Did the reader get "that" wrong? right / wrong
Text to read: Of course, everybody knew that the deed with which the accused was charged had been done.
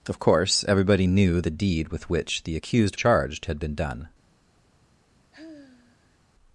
wrong